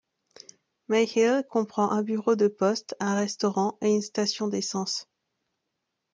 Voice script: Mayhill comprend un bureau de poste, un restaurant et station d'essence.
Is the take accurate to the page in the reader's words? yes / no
no